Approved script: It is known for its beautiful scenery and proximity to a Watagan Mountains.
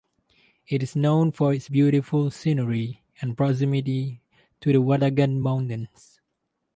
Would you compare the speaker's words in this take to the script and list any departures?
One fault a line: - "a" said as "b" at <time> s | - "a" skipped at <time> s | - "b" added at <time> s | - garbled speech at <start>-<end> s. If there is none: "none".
- "a" said as "the" at 4.7 s